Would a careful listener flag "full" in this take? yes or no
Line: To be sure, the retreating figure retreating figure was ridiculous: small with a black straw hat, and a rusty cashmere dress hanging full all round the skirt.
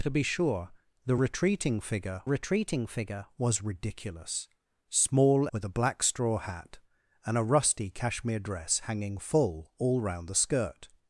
no